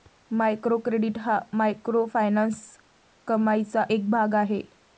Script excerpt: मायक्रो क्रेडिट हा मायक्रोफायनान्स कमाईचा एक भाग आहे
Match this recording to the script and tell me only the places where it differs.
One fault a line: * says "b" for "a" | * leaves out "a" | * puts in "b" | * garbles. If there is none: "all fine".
all fine